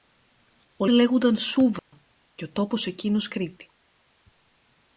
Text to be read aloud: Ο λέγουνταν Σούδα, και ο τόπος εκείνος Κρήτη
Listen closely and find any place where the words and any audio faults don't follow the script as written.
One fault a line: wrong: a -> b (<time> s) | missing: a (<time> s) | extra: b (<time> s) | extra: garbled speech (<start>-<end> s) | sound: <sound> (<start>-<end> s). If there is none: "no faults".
sound: dropout (1.8-1.9 s)